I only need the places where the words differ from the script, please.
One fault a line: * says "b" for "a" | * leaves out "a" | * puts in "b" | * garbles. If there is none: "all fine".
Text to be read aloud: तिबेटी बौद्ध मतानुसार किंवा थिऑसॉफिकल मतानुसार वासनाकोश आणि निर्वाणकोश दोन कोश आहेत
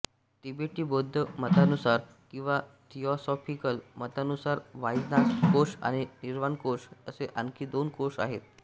* puts in "असे आणखी"